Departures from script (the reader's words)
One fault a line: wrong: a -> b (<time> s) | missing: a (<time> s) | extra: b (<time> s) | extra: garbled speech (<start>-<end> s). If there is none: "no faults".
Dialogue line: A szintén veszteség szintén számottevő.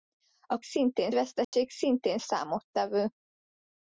no faults